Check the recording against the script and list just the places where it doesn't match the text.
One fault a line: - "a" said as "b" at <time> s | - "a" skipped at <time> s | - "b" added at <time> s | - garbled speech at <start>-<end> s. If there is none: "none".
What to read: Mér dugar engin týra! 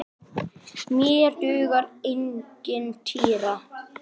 none